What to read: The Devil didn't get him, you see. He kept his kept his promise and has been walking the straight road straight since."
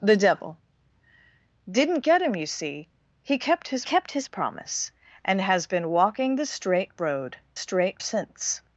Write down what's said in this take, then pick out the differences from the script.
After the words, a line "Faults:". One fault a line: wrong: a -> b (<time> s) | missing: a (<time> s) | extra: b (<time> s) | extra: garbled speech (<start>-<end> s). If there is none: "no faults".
The Devil didn't get him, you see. He kept his kept his promise and has been walking the straight road straight since."
Faults:
no faults